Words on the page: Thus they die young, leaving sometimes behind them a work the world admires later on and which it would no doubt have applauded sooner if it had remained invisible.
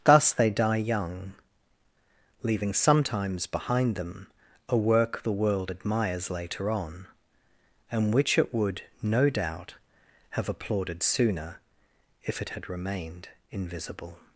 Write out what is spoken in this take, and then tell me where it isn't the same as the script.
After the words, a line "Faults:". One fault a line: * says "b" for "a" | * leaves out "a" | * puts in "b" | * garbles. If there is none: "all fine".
Thus they die young, leaving sometimes behind them a work the world admires later on and which it would no doubt have applauded sooner if it had remained invisible.
Faults:
all fine